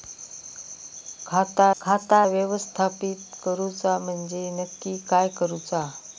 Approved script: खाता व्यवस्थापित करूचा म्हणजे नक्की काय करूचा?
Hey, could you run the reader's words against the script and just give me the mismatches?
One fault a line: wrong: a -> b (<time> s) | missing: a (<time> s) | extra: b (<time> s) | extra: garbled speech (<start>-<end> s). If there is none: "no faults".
extra: खाता (1.8 s)